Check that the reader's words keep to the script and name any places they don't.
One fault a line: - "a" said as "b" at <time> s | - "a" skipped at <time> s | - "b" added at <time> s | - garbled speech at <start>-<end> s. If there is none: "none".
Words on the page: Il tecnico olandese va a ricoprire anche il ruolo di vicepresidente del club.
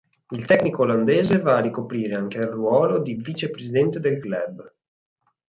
none